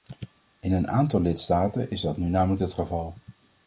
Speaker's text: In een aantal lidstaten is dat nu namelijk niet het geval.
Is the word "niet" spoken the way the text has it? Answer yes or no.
no